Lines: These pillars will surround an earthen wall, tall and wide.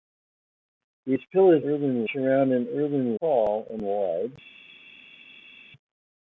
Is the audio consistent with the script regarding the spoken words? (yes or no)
no